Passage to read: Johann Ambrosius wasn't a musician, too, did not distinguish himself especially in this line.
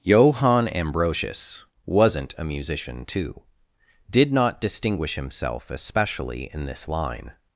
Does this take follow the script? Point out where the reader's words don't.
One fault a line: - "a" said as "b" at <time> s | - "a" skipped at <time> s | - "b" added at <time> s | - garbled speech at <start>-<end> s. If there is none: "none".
none